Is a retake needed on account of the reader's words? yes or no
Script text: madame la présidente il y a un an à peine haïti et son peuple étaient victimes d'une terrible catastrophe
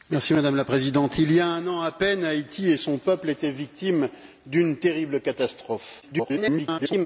yes